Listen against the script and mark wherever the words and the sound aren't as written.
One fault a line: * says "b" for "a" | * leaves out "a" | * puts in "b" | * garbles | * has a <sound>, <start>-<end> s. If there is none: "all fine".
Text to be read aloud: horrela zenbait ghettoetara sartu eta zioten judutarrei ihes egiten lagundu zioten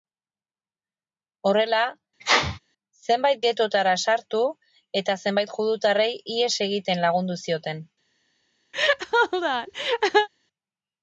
* has a sneeze, 2.2-2.6 s
* says "zenbait" for "zioten"
* has a laugh, 8.7-10.3 s